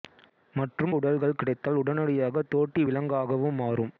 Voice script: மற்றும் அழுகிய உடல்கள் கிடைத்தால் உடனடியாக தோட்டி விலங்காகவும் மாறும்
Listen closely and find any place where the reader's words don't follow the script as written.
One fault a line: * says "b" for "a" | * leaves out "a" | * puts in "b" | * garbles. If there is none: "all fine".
* leaves out "அழுகிய"